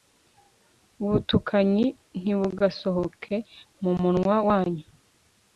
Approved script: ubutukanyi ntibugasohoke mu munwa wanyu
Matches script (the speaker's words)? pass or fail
pass